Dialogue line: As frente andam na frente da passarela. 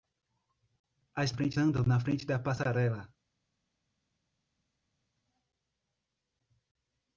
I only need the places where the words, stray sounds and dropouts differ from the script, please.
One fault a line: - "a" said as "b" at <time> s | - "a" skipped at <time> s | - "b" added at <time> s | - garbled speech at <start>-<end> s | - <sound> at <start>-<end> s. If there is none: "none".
none